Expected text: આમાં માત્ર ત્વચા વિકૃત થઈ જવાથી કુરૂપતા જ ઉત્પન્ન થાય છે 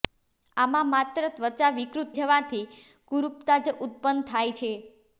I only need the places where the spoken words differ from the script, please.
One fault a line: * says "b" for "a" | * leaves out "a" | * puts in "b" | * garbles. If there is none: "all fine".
* leaves out "થઈ"